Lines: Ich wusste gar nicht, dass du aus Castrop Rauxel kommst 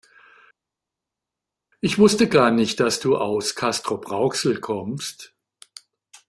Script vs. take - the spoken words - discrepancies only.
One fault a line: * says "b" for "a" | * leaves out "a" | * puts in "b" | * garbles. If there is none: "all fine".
all fine